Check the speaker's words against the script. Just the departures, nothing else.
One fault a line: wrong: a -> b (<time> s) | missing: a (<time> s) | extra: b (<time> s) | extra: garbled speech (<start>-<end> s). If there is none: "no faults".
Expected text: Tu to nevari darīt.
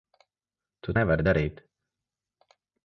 missing: to (0.9 s)